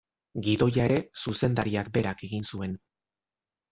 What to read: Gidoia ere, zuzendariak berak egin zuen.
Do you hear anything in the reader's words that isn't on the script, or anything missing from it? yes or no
no